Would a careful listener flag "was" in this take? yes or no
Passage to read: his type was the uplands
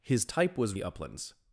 no